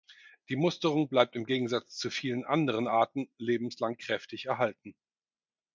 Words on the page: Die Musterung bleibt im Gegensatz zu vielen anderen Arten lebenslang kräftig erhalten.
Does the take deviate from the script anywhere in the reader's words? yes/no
no